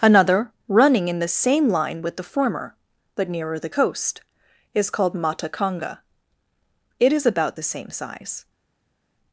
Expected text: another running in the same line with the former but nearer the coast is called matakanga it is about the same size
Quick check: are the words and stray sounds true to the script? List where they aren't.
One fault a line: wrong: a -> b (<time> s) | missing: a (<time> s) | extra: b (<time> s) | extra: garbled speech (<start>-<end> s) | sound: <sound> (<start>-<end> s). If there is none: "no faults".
no faults